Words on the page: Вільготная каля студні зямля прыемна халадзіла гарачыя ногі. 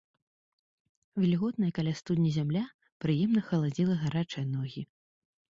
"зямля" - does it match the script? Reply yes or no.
yes